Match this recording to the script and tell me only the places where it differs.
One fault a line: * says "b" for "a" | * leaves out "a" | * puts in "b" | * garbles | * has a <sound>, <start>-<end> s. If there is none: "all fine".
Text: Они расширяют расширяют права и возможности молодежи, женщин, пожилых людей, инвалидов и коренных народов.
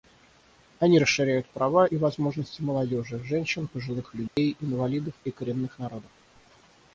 * leaves out "расширяют"
* has a dropout, 4.3-4.4 s